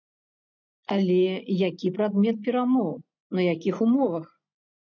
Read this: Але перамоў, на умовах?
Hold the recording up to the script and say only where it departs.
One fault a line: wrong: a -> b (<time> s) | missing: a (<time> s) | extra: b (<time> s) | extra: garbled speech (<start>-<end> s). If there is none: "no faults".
extra: які прадмет (1.7 s)
extra: якіх (3.5 s)